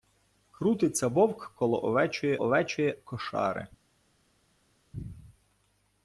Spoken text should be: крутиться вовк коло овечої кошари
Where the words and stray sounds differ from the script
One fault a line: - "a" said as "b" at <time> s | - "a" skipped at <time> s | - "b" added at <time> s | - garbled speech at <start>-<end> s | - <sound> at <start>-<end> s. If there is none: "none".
- "овечої" added at 2.4 s